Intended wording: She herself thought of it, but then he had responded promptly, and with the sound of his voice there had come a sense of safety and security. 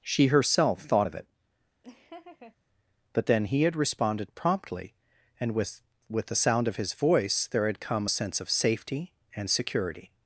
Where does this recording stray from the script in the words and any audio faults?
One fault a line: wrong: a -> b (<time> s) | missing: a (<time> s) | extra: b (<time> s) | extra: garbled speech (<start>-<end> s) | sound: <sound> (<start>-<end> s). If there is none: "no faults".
sound: laugh (1.8-2.6 s)
extra: with (6.1 s)